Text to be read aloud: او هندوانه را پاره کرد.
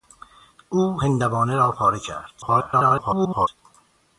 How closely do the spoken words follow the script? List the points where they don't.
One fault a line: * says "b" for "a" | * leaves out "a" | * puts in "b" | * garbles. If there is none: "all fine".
* garbles